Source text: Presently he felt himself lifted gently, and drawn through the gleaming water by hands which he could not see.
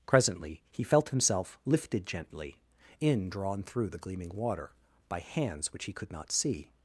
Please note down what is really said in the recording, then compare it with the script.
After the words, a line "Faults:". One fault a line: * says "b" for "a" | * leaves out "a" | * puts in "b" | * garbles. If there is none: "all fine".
Presently he felt himself lifted gently, in drawn through the gleaming water by hands which he could not see.
Faults:
* says "in" for "and"